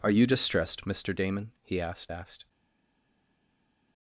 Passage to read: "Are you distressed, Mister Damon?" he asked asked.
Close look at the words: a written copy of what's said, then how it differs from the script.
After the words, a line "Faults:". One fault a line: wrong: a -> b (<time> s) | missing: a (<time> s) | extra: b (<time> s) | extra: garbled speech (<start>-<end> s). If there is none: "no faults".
"Are you distressed, Mister Damon?" he asked asked.
Faults:
no faults